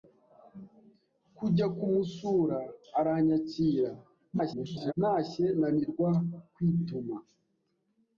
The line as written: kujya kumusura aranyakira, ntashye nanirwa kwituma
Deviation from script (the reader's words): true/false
true